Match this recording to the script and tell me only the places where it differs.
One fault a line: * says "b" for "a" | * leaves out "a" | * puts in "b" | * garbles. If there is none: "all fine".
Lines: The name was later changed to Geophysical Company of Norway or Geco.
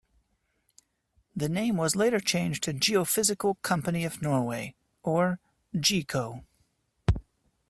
all fine